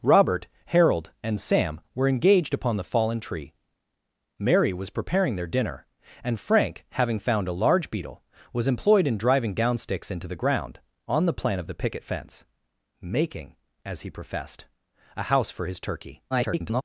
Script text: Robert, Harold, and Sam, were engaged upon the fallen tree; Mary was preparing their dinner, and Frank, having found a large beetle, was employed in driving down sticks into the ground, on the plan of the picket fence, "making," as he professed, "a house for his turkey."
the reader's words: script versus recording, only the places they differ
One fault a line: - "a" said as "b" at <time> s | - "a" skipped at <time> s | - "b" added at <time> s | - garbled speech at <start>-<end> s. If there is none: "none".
- garbled speech at 16.3-16.8 s